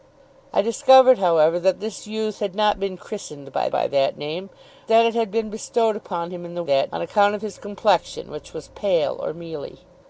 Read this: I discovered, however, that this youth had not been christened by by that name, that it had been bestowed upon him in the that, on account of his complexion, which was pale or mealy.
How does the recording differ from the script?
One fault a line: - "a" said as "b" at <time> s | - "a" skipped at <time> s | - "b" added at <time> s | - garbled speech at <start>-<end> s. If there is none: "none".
none